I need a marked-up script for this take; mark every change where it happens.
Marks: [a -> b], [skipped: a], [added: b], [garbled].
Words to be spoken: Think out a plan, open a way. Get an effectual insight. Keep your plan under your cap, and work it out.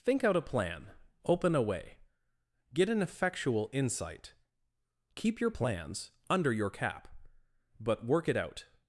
Think out a plan, open a way. Get an effectual insight. Keep your [plan -> plans] under your cap, [and -> but] work it out.